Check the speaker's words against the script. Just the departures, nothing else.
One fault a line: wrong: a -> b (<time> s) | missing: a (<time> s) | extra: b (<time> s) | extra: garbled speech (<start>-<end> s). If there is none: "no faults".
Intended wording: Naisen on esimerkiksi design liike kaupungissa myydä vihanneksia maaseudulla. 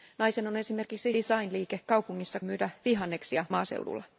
no faults